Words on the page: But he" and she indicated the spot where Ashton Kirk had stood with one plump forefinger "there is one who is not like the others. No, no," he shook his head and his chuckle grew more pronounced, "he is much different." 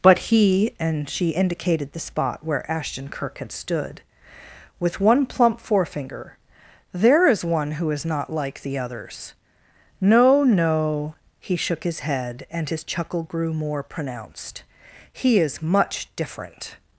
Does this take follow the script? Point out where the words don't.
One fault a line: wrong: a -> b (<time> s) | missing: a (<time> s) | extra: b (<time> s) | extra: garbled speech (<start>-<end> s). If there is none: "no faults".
no faults